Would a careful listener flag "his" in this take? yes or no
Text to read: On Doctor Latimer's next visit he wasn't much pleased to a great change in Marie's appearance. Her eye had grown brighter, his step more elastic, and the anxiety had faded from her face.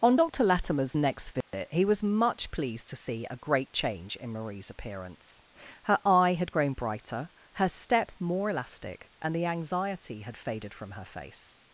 yes